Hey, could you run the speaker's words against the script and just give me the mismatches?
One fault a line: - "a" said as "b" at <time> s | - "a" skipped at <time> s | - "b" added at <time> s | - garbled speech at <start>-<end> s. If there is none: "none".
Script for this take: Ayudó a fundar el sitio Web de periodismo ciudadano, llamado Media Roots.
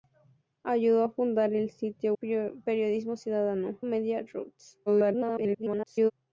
- "Web de" skipped at 2.1 s
- "llamado" skipped at 3.8 s
- garbled speech at 4.9-6.1 s